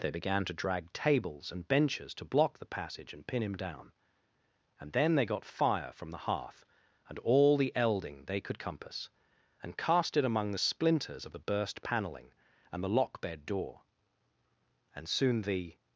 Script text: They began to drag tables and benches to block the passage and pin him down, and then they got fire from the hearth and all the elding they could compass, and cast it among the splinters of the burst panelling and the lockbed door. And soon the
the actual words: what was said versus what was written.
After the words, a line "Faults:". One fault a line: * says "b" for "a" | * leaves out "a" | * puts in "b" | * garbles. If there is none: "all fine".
They began to drag tables and benches to block the passage and pin him down, and then they got fire from the hearth and all the elding they could compass, and cast it among the splinters of the burst panelling and the lockbed door. And soon the
Faults:
all fine